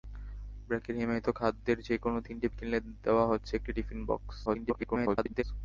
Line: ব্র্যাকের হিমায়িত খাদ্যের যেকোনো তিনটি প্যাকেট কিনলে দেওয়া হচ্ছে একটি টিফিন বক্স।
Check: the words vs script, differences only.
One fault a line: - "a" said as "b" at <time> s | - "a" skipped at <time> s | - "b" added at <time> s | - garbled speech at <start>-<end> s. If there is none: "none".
- "প্যাকেট" skipped at 2.5 s
- garbled speech at 4.5-5.4 s